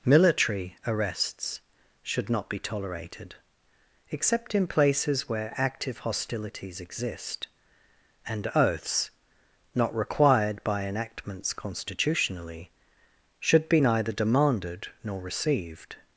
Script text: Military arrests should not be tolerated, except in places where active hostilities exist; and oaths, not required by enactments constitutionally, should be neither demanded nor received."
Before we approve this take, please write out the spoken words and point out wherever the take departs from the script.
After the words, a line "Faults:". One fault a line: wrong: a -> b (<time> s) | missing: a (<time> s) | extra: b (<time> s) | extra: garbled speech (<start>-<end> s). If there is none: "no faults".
Military arrests should not be tolerated, except in places where active hostilities exist; and oaths, not required by enactments constitutionally, should be neither demanded nor received."
Faults:
no faults